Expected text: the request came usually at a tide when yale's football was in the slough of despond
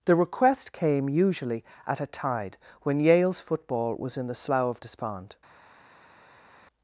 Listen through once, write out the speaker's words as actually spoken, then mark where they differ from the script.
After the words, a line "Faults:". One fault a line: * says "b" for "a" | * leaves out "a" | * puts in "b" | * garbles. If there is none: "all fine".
the request came usually at a tide when yale's football was in the slough of despond
Faults:
all fine